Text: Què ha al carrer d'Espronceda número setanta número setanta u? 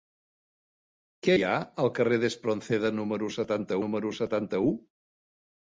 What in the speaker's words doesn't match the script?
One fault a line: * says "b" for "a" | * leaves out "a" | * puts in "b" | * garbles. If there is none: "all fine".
all fine